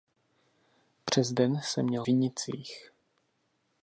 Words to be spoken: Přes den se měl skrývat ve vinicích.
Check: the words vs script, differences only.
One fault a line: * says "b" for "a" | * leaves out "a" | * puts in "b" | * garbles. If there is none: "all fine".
* leaves out "skrývat ve"